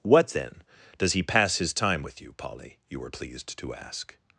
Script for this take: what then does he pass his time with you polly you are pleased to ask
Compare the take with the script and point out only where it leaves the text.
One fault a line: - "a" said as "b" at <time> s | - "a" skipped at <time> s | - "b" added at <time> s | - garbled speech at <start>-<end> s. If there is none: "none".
- "are" said as "were" at 3.0 s